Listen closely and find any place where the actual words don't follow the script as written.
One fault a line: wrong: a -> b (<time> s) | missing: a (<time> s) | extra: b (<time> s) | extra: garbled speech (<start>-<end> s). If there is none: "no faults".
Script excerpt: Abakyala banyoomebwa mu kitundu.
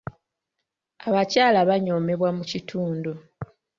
no faults